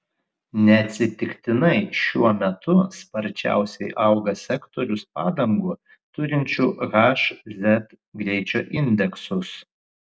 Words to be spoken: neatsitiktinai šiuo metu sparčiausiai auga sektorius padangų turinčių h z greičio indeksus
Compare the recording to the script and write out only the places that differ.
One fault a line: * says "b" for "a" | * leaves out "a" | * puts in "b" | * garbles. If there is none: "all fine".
all fine